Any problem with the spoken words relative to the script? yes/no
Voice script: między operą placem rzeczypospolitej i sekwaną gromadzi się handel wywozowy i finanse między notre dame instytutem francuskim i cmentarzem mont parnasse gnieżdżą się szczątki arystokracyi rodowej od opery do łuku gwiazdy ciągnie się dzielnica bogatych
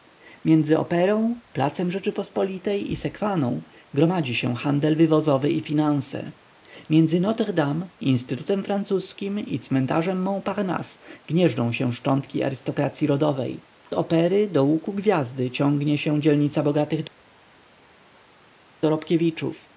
yes